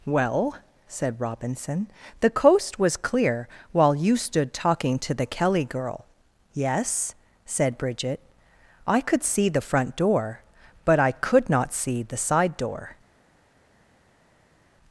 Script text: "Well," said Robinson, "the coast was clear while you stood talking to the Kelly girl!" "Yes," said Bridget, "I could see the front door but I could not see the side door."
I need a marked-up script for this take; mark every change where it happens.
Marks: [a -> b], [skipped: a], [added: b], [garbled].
"Well," said Robinson, "the coast was clear while you stood talking to the Kelly girl!" "Yes," said Bridget, "I could see the front door but I could not see the side door."